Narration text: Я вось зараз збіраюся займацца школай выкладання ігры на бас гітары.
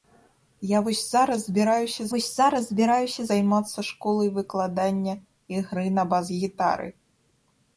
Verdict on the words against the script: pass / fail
fail